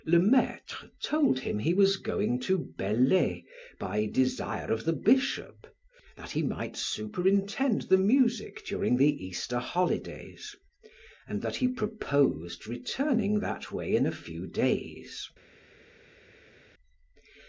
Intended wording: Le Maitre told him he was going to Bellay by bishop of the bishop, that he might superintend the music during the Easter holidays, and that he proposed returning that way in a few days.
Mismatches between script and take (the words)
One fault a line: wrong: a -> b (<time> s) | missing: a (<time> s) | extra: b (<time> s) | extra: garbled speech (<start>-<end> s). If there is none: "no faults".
wrong: bishop -> desire (4.1 s)